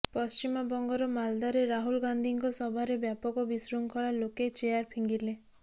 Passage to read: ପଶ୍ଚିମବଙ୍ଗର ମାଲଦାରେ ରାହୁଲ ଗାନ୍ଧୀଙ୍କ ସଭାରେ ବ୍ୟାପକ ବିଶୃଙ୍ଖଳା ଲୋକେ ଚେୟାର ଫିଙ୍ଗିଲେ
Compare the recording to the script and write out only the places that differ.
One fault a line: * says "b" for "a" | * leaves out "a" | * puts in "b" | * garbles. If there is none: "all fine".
all fine